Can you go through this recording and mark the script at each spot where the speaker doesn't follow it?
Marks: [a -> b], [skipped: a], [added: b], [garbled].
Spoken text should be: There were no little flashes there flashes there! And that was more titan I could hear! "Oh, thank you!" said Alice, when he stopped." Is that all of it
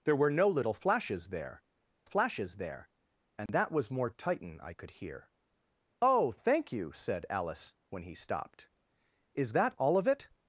There were no little flashes there flashes there! And that was more titan I could hear! "Oh, thank you!" said Alice, when he stopped." Is that all of it